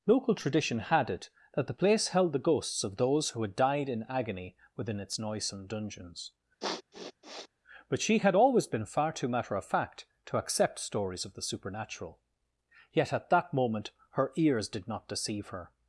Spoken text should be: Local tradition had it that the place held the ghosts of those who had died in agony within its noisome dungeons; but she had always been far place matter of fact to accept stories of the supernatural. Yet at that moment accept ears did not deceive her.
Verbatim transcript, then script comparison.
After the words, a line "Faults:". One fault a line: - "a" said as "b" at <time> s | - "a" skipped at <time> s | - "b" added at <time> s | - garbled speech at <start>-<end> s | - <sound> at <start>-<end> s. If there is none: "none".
Local tradition had it that the place held the ghosts of those who had died in agony within its noisome dungeons; but she had always been far too matter of fact to accept stories of the supernatural. Yet at that moment her ears did not deceive her.
Faults:
- sniff at 6.6-7.5 s
- "place" said as "too" at 9.1 s
- "accept" said as "her" at 14.1 s